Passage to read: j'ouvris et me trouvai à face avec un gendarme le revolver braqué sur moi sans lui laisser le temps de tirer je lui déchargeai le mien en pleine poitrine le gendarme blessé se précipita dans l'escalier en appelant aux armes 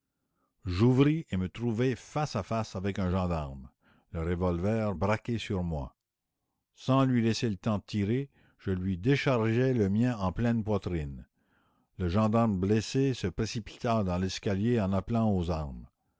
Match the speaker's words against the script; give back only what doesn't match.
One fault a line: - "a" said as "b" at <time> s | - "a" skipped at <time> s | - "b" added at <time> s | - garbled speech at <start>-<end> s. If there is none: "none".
- "face" added at 1.9 s